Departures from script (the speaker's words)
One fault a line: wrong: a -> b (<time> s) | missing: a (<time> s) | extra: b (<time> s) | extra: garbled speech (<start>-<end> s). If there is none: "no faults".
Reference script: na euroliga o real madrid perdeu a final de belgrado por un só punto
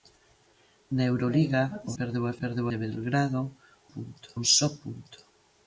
missing: real madrid (1.9 s)
wrong: final -> perdeu (2.4 s)
wrong: por -> punto (3.9 s)